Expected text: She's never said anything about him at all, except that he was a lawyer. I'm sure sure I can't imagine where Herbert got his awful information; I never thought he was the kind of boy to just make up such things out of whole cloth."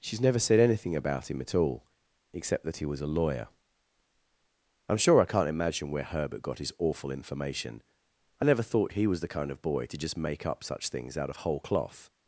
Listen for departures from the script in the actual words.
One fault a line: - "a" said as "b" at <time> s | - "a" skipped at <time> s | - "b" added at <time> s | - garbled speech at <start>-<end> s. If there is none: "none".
- "sure" skipped at 5.2 s